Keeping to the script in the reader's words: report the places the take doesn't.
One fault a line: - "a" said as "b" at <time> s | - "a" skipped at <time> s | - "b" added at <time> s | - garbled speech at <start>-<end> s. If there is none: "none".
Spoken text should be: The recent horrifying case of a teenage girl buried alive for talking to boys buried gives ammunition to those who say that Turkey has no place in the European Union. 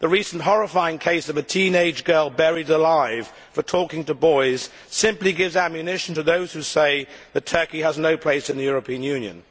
- "buried" said as "simply" at 4.9 s